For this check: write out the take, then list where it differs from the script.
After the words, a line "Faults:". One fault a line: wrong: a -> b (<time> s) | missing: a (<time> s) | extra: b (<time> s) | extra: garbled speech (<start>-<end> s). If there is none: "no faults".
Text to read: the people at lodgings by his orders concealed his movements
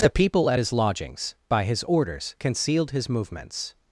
the people at his lodgings by his orders concealed his movements
Faults:
extra: his (0.6 s)